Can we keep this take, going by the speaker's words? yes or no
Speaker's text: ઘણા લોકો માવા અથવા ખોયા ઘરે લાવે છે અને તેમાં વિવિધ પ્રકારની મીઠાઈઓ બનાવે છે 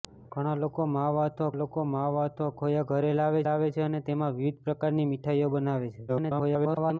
no